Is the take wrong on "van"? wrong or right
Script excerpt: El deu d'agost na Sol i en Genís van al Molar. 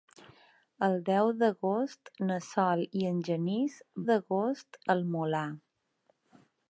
wrong